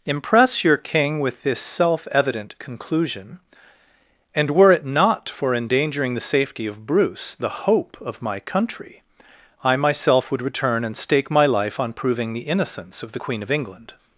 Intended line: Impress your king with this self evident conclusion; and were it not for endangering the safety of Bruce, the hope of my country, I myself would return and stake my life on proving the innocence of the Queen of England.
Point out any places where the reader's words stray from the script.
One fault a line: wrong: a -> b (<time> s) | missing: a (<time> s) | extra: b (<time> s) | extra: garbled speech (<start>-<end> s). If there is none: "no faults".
no faults